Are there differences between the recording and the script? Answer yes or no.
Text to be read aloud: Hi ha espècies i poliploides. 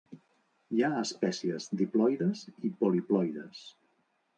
yes